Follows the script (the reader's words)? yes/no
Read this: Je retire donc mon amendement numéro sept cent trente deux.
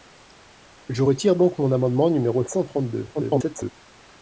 no